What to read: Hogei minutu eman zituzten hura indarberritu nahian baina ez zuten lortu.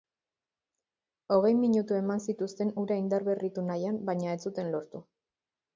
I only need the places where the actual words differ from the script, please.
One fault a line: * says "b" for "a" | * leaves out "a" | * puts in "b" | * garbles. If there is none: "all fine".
all fine